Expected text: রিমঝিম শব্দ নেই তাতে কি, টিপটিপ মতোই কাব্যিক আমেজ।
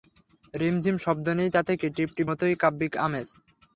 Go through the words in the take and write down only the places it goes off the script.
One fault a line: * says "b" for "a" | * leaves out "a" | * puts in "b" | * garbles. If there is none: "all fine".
all fine